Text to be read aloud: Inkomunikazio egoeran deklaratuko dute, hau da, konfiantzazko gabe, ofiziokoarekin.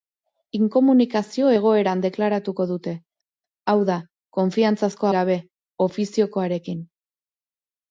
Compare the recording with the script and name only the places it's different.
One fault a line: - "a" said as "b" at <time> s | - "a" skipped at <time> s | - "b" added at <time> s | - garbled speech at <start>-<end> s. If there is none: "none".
none